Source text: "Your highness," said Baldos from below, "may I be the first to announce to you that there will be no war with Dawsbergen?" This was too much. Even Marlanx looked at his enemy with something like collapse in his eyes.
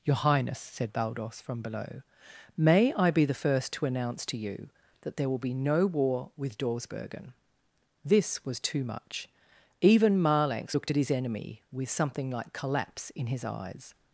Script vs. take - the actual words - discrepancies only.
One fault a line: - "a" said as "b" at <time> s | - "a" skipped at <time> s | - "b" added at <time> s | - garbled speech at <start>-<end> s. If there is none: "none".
none